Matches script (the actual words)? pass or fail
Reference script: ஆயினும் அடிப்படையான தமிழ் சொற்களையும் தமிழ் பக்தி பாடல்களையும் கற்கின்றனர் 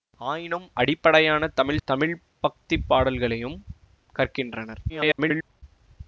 fail